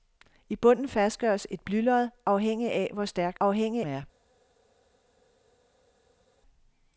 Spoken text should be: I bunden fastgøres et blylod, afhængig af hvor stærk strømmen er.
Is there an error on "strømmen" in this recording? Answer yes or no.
yes